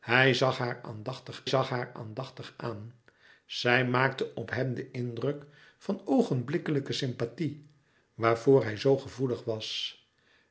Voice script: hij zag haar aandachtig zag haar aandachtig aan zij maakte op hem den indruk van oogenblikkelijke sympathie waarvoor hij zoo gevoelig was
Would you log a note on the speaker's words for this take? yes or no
no